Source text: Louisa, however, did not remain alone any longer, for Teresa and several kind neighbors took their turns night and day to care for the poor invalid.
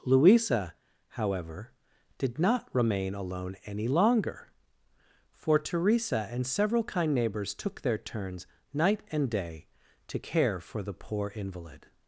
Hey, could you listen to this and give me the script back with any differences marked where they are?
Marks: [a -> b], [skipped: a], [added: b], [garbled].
Louisa, however, did not remain alone any longer, for Teresa and several kind neighbors took their turns night and day to care for the poor invalid.